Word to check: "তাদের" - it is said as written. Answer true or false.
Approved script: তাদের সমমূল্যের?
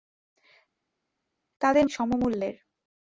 true